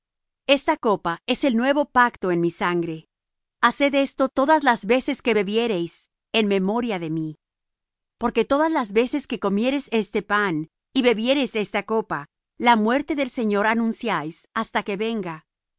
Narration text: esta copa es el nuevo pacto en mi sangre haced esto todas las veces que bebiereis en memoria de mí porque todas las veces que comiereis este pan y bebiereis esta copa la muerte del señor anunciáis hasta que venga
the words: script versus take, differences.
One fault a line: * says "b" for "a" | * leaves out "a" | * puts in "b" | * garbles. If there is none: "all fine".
all fine